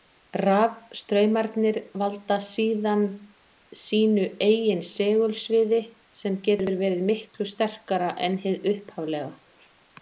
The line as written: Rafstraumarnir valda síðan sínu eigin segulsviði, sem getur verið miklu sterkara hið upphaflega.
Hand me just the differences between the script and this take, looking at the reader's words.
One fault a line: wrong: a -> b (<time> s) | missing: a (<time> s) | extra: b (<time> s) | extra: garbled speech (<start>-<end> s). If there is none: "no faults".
extra: en (8.3 s)